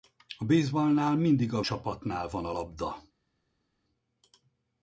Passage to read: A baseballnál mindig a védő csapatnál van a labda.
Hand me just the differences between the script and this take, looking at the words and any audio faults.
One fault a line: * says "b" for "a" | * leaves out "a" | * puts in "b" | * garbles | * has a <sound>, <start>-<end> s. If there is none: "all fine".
* leaves out "védő"